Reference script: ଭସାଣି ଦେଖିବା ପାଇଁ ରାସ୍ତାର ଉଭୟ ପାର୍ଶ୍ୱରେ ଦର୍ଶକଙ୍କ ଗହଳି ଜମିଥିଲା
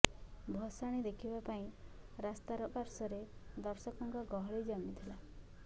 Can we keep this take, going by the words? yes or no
no